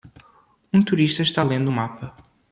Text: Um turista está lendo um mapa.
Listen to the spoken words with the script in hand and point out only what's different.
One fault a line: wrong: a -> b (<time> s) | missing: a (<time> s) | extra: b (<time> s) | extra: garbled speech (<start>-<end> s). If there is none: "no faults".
no faults